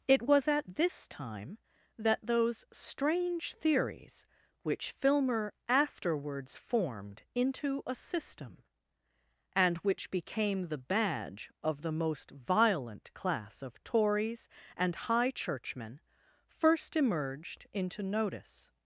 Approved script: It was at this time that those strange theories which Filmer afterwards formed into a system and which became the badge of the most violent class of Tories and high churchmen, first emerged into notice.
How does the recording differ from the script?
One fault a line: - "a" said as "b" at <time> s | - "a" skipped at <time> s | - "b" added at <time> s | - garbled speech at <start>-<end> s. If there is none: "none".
none